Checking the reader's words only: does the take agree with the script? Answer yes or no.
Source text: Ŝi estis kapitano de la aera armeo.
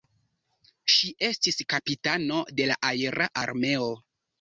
yes